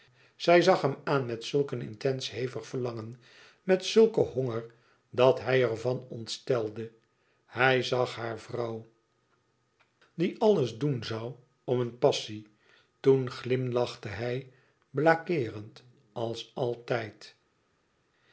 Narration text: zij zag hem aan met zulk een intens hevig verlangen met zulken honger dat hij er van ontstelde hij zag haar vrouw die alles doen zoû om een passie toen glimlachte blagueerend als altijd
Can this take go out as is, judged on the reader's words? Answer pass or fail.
fail